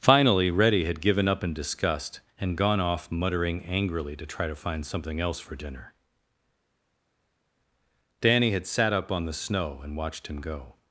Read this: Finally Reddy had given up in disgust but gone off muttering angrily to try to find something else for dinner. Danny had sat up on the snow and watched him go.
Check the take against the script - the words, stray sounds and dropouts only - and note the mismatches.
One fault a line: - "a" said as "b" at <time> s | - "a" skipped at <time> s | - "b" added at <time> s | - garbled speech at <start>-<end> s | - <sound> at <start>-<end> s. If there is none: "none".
- "but" said as "and" at 2.4 s